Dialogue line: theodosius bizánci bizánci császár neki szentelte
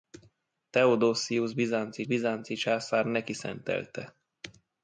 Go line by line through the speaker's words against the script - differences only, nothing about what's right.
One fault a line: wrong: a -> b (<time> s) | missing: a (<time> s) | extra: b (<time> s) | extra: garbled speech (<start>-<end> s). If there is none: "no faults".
no faults